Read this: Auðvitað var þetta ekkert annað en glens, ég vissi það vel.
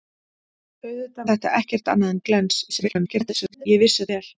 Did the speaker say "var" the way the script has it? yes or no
no